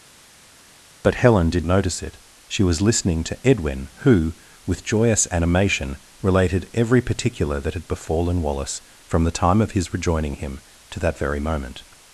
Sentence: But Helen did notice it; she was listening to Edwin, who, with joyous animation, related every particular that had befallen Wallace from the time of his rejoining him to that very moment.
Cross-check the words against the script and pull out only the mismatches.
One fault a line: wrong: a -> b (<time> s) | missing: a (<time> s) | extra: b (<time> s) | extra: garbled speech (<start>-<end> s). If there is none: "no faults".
no faults